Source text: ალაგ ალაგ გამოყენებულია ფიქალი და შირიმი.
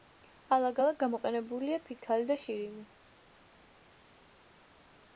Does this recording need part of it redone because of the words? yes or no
no